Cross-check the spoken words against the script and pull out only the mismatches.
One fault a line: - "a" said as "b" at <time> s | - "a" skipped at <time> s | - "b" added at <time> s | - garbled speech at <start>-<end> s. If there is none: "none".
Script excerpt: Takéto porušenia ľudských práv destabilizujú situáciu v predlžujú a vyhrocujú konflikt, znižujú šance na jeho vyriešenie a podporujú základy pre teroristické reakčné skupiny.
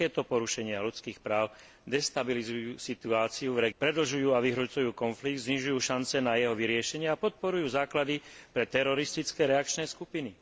none